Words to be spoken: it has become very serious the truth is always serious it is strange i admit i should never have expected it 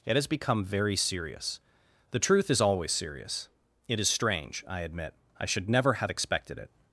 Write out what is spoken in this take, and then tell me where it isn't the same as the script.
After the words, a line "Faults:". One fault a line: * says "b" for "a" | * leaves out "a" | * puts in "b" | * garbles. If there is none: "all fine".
it has become very serious the truth is always serious it is strange i admit i should never have expected it
Faults:
all fine